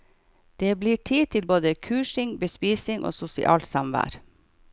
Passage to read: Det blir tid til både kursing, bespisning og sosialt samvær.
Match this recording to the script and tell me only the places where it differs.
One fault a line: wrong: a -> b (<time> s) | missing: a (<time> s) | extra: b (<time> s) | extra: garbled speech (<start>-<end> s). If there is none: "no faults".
no faults